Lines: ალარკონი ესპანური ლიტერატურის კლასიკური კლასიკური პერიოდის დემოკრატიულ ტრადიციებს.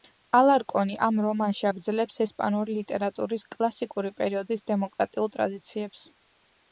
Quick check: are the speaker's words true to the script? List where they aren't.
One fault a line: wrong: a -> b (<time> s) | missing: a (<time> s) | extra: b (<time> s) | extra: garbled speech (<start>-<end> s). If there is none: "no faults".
extra: ამ რომანში აგრძელებს (1.1 s)
missing: კლასიკური (4.1 s)